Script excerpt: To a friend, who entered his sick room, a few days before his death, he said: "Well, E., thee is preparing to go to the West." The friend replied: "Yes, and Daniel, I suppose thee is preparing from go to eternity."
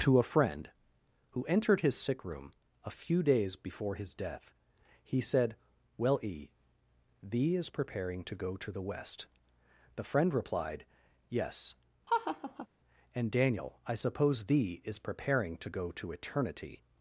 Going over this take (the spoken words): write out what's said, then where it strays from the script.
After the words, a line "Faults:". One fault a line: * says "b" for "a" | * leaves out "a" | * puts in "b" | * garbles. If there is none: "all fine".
To a friend, who entered his sick room, a few days before his death, he said: "Well, E., thee is preparing to go to the West." The friend replied: "Yes, and Daniel, I suppose thee is preparing to go to eternity."
Faults:
* says "to" for "from"